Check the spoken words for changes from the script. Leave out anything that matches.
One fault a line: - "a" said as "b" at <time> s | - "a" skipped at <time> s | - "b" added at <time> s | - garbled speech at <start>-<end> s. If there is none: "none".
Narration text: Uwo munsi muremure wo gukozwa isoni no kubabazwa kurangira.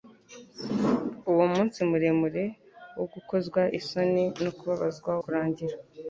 none